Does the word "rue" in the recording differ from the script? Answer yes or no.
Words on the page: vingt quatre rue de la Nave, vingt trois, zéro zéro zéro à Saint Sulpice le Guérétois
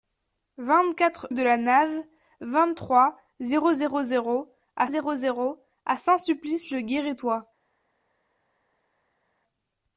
yes